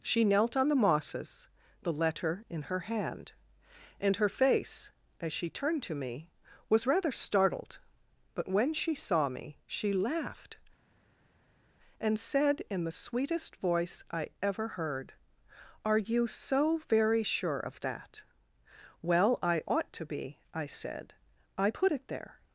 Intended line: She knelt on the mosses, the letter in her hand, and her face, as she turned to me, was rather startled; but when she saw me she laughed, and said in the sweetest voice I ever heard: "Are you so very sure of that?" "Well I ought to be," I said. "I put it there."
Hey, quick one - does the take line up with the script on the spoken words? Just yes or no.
yes